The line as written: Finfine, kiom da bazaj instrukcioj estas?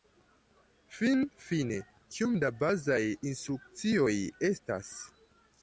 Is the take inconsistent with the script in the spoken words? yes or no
no